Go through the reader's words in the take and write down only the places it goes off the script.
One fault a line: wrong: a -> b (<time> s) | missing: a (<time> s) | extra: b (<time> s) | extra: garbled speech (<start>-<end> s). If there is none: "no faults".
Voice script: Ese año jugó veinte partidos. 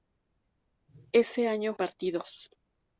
missing: jugó veinte (1.8 s)